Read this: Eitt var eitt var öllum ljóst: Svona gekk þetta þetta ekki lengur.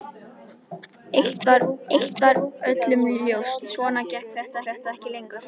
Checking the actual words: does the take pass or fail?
pass